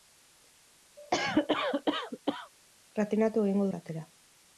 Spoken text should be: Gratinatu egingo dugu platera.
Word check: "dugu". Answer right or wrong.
wrong